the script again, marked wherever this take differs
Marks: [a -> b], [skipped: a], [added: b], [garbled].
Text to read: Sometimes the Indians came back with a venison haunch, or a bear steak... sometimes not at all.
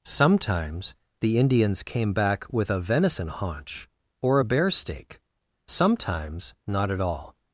Sometimes the Indians came back with a venison haunch, or a bear steak... sometimes not at all.